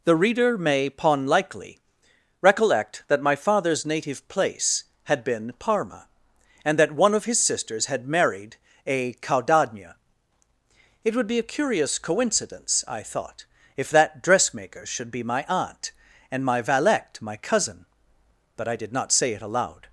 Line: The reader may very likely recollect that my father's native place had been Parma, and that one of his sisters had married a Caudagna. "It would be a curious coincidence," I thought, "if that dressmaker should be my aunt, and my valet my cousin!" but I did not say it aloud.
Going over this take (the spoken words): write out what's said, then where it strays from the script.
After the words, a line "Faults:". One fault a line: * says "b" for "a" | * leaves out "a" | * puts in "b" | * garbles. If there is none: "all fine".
The reader may pon likely recollect that my father's native place had been Parma, and that one of his sisters had married a Caudagna. "It would be a curious coincidence," I thought, "if that dressmaker should be my aunt, and my valet my cousin!" but I did not say it aloud.
Faults:
* says "pon" for "very"